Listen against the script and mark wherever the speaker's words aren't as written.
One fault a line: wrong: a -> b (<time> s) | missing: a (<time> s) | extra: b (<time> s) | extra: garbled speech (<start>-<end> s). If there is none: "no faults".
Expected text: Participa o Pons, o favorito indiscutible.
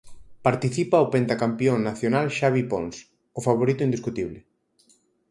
extra: pentacampión nacional Xavi (1.1 s)